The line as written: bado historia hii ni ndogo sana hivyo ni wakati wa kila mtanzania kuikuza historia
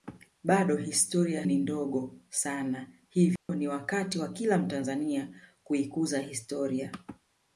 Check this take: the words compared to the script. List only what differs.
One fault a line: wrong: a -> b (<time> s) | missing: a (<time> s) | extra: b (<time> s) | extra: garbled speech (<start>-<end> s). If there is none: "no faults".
missing: hii (1.4 s)